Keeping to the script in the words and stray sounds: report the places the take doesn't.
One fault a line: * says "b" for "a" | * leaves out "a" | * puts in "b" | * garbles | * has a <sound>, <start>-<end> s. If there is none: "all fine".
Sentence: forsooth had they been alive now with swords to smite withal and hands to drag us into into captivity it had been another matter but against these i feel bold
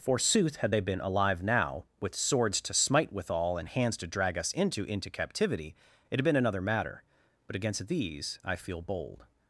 all fine